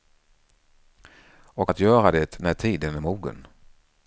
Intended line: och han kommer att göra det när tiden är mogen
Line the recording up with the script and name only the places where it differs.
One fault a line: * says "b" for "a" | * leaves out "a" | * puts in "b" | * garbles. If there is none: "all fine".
* leaves out "han kommer"